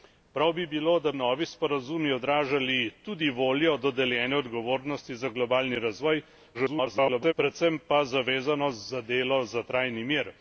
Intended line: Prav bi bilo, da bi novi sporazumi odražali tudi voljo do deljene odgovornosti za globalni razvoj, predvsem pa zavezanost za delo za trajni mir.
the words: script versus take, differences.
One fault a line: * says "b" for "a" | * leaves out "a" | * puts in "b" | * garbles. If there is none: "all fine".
* leaves out "bi"
* garbles